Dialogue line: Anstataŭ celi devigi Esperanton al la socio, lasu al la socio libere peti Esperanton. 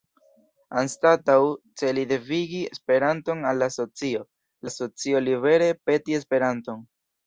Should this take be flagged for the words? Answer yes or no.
yes